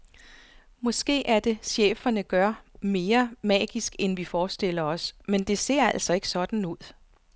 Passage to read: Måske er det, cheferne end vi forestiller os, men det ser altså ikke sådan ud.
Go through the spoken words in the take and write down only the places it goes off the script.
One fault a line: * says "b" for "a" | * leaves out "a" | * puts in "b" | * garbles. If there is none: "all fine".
* puts in "gør mere magisk"